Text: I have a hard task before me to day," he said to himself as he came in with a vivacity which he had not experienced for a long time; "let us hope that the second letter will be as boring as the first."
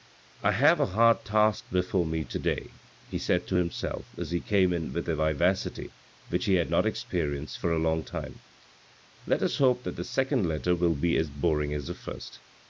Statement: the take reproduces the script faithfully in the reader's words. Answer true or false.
true